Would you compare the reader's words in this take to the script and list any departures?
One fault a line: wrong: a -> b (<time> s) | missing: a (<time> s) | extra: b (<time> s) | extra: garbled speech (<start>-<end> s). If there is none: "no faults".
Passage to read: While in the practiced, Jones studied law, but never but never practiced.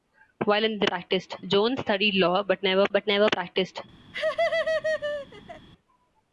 no faults